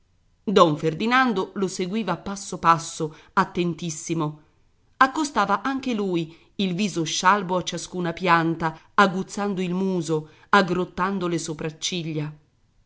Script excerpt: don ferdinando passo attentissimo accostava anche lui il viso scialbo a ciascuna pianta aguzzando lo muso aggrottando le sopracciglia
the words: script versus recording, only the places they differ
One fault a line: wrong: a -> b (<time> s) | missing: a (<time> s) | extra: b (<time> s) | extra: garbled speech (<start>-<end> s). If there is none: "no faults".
extra: lo seguiva (1.5 s)
extra: passo (2.6 s)
wrong: lo -> il (9.6 s)